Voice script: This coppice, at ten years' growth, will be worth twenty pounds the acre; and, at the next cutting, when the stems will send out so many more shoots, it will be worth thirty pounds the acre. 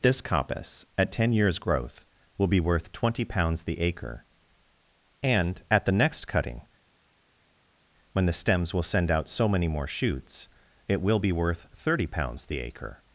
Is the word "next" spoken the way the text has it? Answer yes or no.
yes